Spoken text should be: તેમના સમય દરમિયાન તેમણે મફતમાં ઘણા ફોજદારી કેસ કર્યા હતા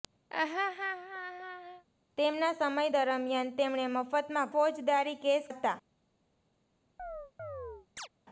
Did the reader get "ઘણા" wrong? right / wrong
wrong